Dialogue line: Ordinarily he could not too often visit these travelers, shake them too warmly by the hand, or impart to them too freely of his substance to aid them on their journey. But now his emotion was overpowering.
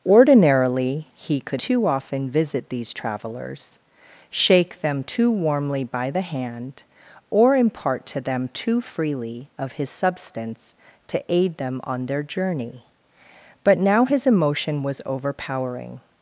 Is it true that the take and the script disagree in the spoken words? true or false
true